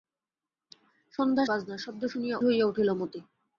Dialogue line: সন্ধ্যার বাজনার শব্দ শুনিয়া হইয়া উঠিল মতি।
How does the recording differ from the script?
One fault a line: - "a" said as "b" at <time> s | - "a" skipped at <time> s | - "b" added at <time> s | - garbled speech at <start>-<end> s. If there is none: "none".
none